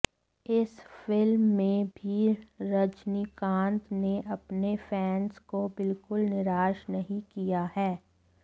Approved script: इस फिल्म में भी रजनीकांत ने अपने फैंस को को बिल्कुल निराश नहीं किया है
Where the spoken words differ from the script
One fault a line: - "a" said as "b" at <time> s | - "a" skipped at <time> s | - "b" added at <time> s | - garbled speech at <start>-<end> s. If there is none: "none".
- "को" skipped at 5.7 s